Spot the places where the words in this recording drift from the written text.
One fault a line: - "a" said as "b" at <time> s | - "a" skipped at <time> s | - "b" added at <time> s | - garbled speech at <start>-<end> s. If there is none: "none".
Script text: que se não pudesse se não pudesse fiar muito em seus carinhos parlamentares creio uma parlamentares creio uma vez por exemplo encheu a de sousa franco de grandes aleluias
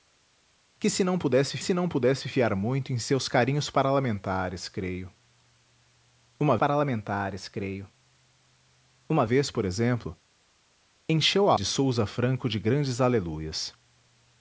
none